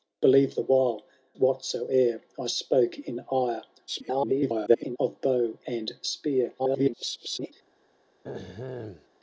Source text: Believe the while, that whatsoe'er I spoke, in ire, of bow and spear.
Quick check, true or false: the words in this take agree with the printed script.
false